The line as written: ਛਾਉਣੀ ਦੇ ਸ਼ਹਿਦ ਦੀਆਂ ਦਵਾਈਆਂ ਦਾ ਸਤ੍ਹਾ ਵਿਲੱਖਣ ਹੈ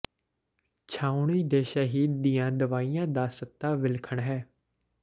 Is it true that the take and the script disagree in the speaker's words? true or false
false